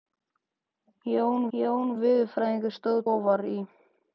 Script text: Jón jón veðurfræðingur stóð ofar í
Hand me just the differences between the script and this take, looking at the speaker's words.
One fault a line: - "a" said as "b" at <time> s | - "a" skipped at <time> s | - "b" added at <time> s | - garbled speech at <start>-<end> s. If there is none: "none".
none